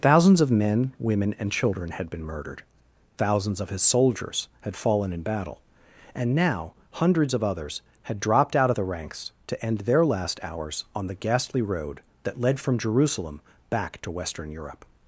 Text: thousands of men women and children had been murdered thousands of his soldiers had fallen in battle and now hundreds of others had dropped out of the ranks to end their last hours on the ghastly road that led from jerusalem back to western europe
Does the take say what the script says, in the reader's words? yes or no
yes